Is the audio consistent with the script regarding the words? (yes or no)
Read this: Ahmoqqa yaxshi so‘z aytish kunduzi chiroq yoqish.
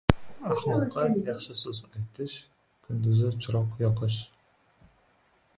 yes